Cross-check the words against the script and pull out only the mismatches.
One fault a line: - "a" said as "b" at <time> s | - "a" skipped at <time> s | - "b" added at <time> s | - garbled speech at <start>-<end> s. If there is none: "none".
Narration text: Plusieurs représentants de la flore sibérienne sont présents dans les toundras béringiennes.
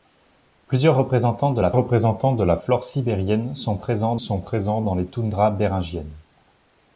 - "représentants de la" added at 1.7 s
- "sont présents" added at 4.2 s